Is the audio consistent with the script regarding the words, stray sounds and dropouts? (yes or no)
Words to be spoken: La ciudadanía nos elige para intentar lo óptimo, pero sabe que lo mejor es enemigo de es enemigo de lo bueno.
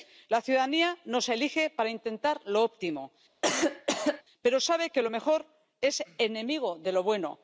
no